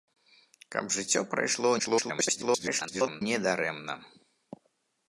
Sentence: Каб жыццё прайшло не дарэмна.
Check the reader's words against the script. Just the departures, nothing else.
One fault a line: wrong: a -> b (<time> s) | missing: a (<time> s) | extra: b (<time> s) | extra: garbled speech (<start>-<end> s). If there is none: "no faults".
extra: garbled speech (1.8-3.2 s)